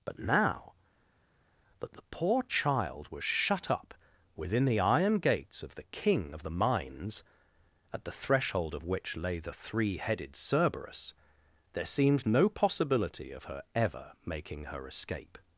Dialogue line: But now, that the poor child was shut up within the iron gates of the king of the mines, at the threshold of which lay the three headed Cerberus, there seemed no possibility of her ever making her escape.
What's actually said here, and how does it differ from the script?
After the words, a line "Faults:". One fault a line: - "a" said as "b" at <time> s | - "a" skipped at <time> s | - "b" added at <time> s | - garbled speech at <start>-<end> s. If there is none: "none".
But now, that the poor child was shut up within the iron gates of the king of the mines, at the threshold of which lay the three headed Cerberus, there seemed no possibility of her ever making her escape.
Faults:
none